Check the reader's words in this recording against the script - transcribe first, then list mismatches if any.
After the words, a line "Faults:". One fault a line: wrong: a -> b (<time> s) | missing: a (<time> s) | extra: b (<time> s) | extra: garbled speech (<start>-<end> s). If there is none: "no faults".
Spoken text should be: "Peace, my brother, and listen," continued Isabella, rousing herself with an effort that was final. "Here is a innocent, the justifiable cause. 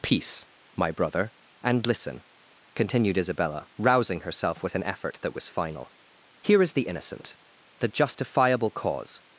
"Peace, my brother, and listen," continued Isabella, rousing herself with an effort that was final. "Here is the innocent, the justifiable cause.
Faults:
wrong: a -> the (6.7 s)